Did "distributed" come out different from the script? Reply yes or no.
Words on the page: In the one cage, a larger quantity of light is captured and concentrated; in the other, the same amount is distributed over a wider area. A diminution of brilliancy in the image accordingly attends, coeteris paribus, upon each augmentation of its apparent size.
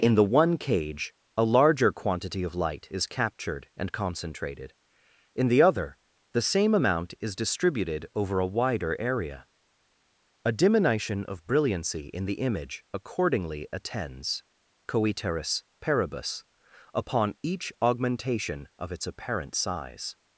no